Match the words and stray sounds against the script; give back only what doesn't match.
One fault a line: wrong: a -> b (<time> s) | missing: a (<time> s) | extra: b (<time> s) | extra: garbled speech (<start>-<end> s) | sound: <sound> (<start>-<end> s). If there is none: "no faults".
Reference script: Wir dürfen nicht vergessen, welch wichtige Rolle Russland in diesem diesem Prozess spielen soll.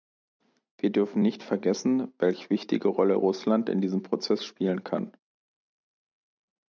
missing: diesem (4.0 s)
wrong: soll -> kann (4.8 s)